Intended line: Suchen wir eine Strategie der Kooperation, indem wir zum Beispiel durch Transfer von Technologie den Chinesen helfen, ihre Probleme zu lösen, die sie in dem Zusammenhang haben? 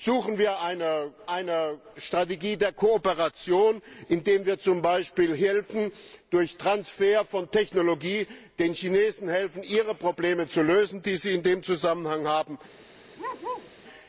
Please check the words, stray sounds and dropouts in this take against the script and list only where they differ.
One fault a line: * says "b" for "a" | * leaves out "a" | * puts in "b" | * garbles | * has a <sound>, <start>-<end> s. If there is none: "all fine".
* puts in "eine"
* has a bark, 13.2-13.7 s